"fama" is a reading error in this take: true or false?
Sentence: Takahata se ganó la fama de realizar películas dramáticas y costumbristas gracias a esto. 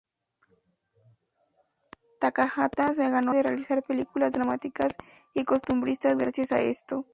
true